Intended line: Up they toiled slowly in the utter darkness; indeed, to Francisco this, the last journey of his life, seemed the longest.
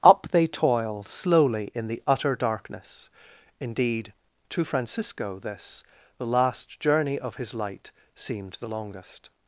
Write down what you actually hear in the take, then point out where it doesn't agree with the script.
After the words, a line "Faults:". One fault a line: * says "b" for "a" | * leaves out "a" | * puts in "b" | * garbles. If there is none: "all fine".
Up they toil slowly in the utter darkness; indeed, to Francisco this, the last journey of his light, seemed the longest.
Faults:
* says "toil" for "toiled"
* says "light" for "life"